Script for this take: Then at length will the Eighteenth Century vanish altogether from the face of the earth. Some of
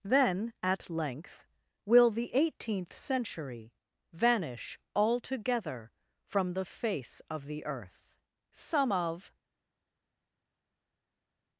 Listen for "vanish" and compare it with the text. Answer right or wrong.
right